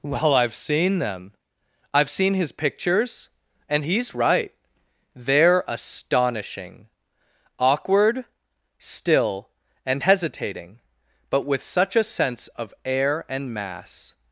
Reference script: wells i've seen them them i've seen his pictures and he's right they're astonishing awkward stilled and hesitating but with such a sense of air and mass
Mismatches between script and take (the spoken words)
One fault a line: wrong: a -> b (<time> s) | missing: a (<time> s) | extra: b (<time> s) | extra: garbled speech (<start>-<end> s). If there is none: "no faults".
wrong: wells -> well (0.0 s)
missing: them (1.3 s)
wrong: stilled -> still (8.8 s)